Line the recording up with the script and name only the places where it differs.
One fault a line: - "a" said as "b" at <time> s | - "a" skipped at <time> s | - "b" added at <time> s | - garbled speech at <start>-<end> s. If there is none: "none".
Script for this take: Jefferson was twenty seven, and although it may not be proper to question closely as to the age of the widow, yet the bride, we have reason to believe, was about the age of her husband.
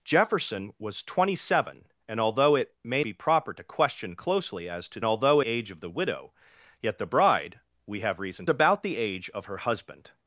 - "not" skipped at 3.0 s
- "the" said as "although" at 5.0 s
- "to believe was" skipped at 8.5 s